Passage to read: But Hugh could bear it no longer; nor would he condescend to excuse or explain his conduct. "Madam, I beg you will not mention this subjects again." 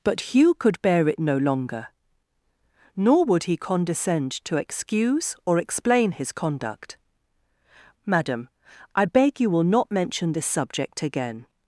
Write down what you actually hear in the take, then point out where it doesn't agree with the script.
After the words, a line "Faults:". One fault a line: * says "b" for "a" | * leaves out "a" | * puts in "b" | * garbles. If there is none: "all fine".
But Hugh could bear it no longer; nor would he condescend to excuse or explain his conduct. "Madam, I beg you will not mention this subject again."
Faults:
* says "subject" for "subjects"